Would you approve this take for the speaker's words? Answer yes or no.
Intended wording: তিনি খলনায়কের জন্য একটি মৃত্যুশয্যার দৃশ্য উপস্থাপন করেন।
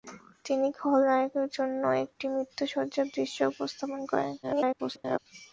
no